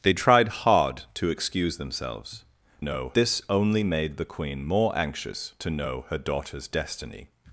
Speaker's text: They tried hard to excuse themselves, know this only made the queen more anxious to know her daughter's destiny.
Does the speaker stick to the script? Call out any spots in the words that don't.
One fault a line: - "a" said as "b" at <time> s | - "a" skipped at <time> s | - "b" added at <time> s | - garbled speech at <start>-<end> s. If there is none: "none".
none